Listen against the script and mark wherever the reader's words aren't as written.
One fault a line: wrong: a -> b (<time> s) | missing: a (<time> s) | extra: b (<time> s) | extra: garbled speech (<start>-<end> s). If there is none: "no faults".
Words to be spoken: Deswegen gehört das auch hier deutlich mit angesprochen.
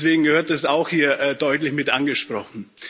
no faults